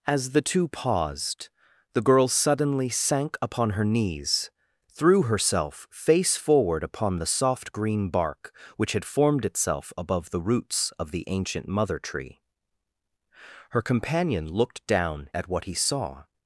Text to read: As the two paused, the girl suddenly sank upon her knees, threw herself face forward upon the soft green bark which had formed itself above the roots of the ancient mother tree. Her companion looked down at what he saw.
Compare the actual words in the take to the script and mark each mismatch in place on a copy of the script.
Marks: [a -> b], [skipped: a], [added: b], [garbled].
As the two paused, the girl suddenly sank upon her knees, threw herself face forward upon the soft green bark which had formed itself above the roots of the ancient mother tree. Her companion looked down at what he saw.